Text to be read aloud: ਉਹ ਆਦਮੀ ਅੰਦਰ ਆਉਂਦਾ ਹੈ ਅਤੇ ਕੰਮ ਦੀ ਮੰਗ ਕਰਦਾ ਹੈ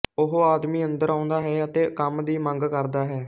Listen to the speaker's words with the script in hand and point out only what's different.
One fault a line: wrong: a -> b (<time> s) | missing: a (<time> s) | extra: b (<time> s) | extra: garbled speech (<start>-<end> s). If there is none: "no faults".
no faults